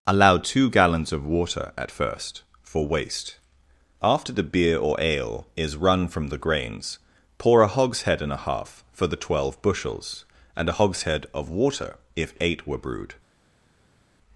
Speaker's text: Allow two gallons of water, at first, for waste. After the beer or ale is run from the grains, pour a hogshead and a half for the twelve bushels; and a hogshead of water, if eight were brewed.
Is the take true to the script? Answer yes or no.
yes